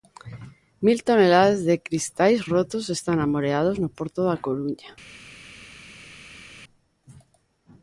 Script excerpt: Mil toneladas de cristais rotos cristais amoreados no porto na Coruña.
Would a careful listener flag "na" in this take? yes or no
yes